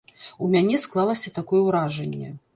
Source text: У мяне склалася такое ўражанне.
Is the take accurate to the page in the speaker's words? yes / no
yes